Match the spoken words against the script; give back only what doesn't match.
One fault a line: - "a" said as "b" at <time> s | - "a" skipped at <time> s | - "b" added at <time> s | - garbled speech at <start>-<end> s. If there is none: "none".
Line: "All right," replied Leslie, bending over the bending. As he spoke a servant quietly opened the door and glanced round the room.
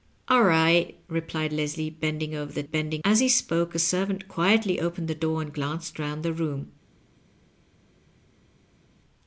none